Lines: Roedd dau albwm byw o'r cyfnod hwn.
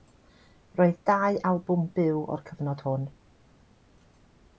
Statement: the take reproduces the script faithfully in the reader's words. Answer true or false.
true